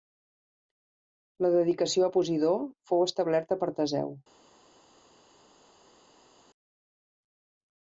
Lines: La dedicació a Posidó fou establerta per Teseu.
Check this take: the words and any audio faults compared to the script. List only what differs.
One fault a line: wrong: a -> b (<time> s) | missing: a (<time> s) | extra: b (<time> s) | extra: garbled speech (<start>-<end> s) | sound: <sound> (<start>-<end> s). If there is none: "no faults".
no faults